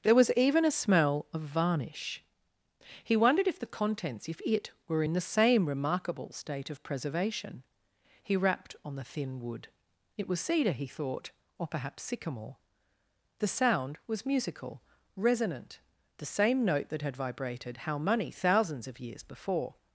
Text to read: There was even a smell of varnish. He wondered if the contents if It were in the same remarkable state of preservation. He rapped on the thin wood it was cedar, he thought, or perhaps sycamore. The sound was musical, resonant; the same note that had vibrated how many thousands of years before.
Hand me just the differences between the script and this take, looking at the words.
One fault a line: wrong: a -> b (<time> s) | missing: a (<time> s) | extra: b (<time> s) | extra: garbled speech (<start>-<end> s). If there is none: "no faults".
wrong: many -> money (18.0 s)